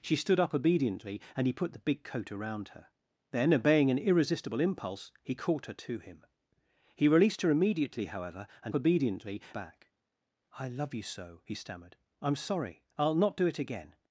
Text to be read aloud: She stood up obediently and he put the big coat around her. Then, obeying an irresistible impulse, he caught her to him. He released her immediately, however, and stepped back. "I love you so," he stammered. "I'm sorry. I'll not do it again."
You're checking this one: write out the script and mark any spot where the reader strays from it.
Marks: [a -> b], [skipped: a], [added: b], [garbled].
She stood up obediently and he put the big coat around her. Then, obeying an irresistible impulse, he caught her to him. He released her immediately, however, and [stepped -> obediently] back. "I love you so," he stammered. "I'm sorry. I'll not do it again."